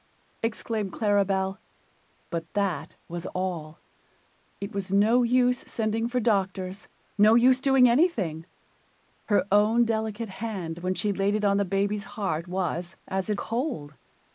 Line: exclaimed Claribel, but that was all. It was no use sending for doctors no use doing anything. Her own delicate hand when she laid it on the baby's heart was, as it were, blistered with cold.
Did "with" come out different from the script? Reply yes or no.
yes